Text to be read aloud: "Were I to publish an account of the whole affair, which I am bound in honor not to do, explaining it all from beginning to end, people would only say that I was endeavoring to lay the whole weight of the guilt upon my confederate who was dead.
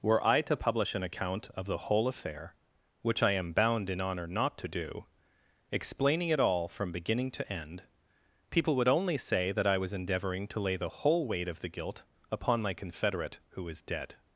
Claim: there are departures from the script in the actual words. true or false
true